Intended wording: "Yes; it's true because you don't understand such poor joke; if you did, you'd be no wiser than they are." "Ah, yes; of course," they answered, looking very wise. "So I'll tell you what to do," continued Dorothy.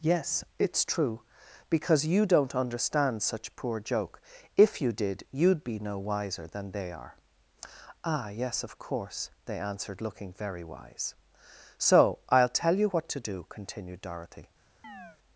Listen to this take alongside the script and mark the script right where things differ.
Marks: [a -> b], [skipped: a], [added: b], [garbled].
"Yes; it's true because you don't understand such poor joke; if you did, you'd be no wiser than they are." "Ah, yes; of course," they answered, looking very wise. "So I'll tell you what to do," continued Dorothy.